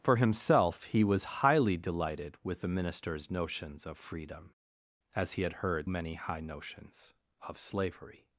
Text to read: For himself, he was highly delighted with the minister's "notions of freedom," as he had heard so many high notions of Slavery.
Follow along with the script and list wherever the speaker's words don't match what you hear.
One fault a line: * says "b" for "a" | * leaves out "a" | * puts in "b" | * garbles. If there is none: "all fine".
* leaves out "so"